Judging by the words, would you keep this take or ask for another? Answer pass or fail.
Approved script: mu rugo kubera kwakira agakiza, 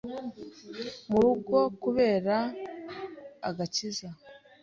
fail